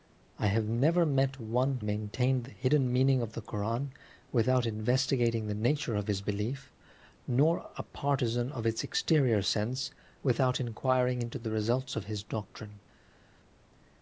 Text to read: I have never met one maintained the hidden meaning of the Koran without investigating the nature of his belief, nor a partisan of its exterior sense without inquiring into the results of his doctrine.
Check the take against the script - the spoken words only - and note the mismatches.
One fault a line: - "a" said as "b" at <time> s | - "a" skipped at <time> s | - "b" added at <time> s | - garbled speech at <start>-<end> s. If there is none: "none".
none